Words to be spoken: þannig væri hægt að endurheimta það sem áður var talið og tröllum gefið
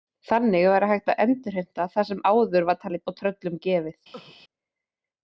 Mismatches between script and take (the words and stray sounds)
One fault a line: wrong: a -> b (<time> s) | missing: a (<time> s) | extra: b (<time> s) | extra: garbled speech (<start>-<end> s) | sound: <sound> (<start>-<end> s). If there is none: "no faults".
sound: cough (4.1-4.4 s)